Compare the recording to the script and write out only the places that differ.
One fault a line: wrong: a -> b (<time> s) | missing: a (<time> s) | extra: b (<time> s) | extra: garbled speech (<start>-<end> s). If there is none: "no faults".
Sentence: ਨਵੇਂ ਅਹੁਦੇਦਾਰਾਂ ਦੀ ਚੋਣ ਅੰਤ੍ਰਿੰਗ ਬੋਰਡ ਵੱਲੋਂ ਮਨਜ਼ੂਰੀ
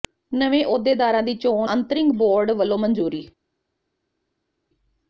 no faults